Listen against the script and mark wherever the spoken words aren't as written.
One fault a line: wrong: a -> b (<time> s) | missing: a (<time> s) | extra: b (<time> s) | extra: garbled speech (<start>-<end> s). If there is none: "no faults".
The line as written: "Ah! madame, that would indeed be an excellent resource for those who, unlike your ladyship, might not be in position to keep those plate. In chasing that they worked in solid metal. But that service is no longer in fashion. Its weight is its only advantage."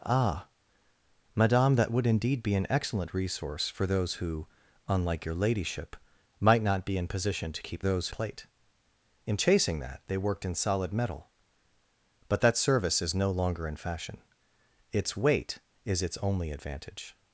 no faults